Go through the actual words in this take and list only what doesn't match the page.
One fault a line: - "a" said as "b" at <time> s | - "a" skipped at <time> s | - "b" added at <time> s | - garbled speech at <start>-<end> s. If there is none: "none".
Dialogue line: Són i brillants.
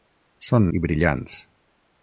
none